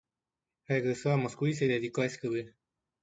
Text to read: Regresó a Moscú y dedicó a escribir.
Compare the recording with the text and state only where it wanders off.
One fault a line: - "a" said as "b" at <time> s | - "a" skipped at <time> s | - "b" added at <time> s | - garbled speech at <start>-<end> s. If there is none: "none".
- "se" added at 1.5 s